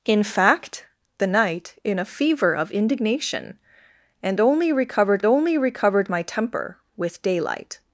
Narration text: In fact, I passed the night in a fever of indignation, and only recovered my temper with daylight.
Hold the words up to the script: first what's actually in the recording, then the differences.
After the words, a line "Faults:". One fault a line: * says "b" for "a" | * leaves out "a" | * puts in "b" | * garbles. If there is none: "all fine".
In fact, the night in a fever of indignation, and only recovered only recovered my temper with daylight.
Faults:
* leaves out "I passed"
* puts in "only recovered"